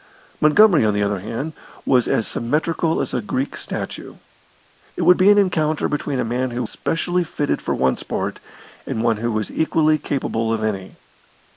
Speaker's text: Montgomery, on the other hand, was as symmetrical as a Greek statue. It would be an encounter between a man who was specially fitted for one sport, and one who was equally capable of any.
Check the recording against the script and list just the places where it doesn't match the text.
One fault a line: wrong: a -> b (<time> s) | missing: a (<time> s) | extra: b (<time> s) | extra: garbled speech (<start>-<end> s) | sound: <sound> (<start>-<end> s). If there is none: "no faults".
missing: was (6.6 s)